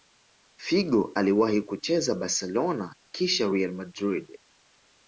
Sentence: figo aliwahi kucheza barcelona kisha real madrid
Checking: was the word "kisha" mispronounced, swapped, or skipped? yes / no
no